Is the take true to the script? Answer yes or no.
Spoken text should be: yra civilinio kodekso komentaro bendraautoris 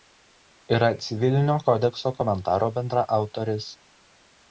yes